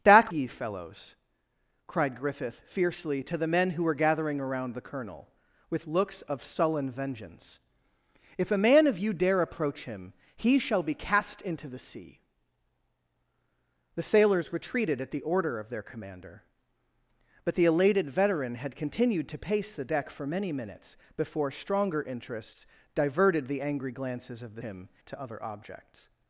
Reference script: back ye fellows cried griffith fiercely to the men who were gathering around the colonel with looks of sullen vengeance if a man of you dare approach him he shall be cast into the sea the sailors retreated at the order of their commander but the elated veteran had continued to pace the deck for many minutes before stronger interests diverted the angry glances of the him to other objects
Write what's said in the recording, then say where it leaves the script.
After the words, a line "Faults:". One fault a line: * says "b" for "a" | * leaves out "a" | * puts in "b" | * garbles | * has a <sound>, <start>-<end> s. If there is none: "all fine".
back ye fellows cried griffith fiercely to the men who were gathering around the colonel with looks of sullen vengeance if a man of you dare approach him he shall be cast into the sea the sailors retreated at the order of their commander but the elated veteran had continued to pace the deck for many minutes before stronger interests diverted the angry glances of the him to other objects
Faults:
all fine